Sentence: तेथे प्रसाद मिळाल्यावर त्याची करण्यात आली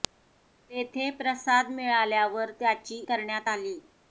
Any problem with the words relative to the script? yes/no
no